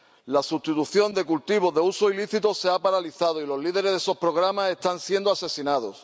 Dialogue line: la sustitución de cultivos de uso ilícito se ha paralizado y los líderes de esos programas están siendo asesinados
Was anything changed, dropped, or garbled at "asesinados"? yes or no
no